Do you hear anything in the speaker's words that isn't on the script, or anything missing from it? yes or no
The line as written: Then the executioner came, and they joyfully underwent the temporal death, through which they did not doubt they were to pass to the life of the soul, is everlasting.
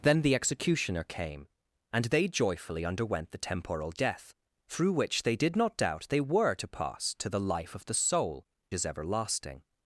no